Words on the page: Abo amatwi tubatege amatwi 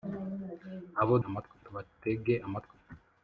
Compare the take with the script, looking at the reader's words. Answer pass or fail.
pass